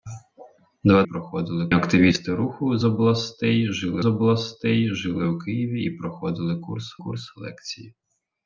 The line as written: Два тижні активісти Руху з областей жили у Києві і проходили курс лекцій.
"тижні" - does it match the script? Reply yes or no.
no